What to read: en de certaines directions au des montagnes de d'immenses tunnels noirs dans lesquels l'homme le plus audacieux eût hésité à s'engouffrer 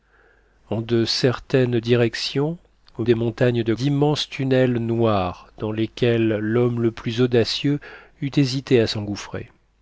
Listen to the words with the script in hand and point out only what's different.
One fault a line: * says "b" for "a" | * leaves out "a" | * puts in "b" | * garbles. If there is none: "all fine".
all fine